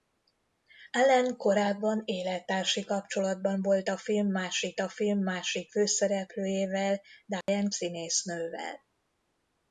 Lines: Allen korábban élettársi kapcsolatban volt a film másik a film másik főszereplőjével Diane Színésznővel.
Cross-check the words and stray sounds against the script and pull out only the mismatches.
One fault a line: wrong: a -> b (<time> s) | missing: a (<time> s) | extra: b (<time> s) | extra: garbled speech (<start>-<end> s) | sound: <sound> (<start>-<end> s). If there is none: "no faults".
sound: dropout (7.4-7.5 s)